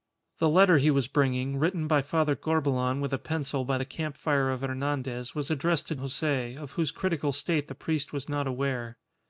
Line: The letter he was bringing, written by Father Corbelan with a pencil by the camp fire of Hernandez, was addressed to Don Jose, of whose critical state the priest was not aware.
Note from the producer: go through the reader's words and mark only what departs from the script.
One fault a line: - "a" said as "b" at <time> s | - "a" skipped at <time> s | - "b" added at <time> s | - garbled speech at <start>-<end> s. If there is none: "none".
- "Don" skipped at 6.0 s